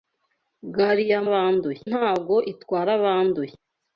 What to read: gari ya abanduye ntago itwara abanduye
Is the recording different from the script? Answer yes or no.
no